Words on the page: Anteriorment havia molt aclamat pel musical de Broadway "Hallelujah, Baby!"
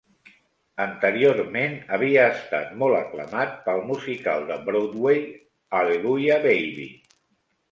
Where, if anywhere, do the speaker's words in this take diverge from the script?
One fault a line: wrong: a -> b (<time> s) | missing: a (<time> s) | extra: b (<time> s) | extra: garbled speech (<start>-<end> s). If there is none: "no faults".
extra: estat (2.4 s)